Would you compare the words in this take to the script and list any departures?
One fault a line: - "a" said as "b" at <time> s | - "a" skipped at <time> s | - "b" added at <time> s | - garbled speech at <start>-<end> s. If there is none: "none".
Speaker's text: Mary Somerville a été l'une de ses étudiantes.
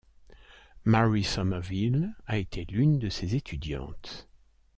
none